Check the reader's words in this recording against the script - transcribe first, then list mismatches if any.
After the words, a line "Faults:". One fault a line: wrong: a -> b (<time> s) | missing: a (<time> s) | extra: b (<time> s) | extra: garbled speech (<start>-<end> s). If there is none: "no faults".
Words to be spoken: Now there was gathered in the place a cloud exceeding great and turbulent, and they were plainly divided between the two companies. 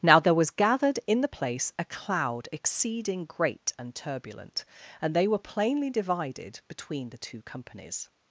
Now there was gathered in the place a cloud exceeding great and turbulent, and they were plainly divided between the two companies.
Faults:
no faults